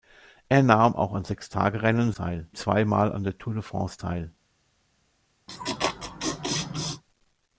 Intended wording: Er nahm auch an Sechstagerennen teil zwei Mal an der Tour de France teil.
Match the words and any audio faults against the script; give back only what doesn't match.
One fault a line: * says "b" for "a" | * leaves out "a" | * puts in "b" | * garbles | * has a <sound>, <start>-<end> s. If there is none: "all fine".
* has a laugh, 5.5-7.0 s